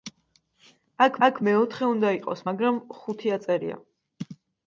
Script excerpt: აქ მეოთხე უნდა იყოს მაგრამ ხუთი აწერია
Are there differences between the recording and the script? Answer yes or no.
yes